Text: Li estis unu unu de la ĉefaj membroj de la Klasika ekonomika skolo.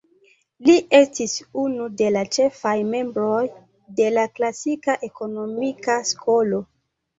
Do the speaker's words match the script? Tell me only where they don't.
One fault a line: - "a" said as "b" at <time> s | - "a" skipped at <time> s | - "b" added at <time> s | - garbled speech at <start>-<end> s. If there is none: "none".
- "unu" skipped at 1.9 s